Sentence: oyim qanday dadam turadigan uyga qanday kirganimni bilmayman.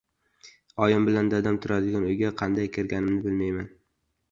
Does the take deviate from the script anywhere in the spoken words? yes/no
yes